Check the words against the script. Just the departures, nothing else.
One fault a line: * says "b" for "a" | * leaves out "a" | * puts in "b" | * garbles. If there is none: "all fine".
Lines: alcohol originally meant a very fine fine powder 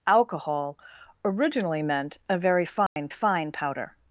all fine